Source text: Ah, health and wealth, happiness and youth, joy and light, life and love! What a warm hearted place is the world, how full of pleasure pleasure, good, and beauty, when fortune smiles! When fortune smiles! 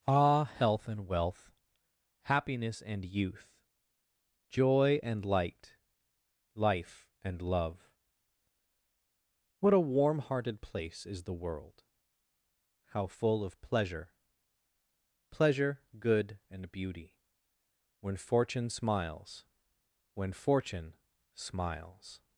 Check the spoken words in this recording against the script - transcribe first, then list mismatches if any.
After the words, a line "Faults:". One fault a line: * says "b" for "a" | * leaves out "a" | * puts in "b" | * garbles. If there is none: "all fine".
Ah, health and wealth, happiness and youth, joy and light, life and love! What a warm hearted place is the world, how full of pleasure pleasure, good, and beauty, when fortune smiles! When fortune smiles!
Faults:
all fine